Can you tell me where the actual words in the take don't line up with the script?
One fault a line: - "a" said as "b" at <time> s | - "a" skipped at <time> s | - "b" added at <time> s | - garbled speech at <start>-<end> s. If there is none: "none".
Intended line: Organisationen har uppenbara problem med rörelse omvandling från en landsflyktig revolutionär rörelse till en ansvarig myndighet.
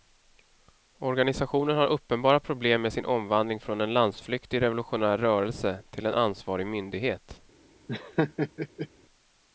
- "rörelse" said as "sin" at 2.9 s